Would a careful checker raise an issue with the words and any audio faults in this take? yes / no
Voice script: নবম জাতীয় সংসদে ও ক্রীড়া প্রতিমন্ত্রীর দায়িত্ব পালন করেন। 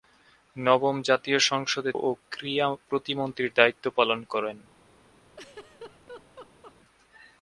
yes